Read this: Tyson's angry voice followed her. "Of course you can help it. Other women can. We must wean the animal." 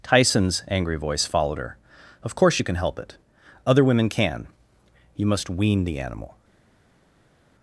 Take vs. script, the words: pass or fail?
fail